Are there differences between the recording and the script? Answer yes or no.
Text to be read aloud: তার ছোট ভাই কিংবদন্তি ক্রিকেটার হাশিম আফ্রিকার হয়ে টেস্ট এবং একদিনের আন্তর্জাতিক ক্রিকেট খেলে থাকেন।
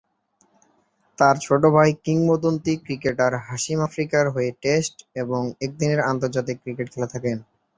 no